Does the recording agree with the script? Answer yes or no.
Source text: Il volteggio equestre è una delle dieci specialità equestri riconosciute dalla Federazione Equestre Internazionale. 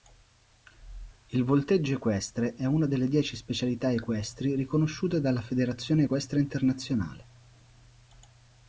yes